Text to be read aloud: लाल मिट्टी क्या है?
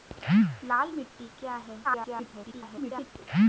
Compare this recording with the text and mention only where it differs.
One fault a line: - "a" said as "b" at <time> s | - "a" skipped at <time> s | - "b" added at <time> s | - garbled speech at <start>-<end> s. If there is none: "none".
- garbled speech at 1.8-3.1 s